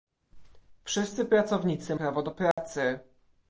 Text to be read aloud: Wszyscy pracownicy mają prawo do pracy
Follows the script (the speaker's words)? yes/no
no